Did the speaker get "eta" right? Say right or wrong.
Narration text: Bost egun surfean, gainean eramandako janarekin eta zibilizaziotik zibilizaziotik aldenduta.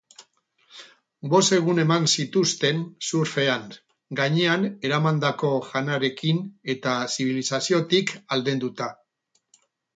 right